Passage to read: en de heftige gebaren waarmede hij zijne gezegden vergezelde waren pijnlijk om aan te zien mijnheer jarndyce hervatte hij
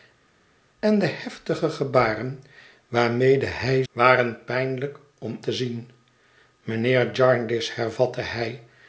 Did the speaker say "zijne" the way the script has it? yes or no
no